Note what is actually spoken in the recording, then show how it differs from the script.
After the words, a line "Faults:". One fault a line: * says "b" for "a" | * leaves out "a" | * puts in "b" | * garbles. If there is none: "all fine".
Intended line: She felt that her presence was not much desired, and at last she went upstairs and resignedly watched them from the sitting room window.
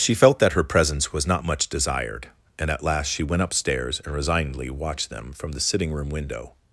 She felt that her presence was not much desired, and at last she went upstairs and resignedly watched them from the sitting room window.
Faults:
all fine